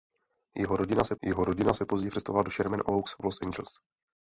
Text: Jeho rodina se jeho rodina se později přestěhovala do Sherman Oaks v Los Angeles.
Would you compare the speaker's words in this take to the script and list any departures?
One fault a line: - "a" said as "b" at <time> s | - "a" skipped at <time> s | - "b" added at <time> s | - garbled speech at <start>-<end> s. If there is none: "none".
none